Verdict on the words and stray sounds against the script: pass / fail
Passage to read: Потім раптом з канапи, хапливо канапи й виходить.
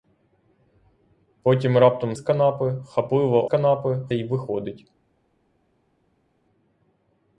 pass